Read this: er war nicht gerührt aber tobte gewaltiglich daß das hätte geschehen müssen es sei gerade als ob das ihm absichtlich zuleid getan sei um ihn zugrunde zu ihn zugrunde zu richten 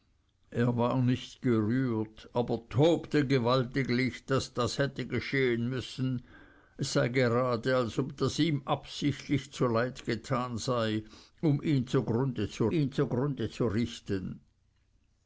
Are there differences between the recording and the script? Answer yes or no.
no